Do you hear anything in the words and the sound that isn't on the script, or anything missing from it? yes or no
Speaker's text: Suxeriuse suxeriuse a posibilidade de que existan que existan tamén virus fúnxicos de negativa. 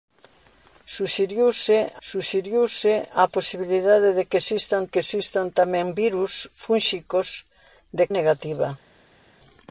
no